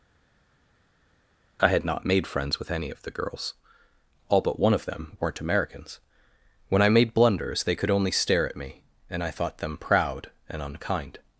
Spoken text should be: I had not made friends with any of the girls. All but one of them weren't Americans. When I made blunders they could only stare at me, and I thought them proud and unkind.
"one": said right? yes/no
yes